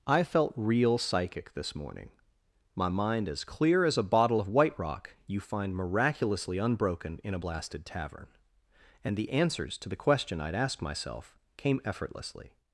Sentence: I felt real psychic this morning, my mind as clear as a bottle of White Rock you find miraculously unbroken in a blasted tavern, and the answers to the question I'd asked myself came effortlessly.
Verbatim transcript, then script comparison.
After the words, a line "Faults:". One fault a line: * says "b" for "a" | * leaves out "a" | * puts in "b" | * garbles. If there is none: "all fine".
I felt real psychic this morning, my mind as clear as a bottle of White Rock you find miraculously unbroken in a blasted tavern, and the answers to the question I'd asked myself came effortlessly.
Faults:
all fine